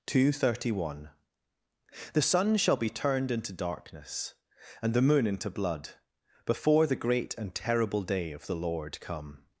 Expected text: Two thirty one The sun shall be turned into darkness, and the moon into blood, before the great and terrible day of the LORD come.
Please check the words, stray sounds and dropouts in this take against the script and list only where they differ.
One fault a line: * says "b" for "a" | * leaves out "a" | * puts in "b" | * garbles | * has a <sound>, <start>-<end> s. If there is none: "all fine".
all fine